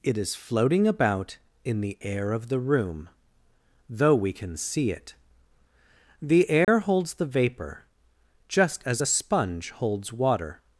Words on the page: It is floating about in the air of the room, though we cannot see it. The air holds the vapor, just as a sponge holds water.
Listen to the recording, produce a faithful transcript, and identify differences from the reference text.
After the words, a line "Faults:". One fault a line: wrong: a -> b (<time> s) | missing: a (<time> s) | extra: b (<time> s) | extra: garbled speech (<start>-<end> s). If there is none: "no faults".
It is floating about in the air of the room, though we can see it. The air holds the vapor, just as a sponge holds water.
Faults:
wrong: cannot -> can (4.3 s)